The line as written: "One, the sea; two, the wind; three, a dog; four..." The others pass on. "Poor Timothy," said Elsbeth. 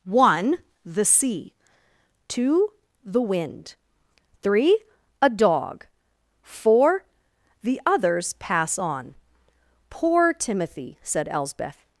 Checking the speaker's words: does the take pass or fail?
pass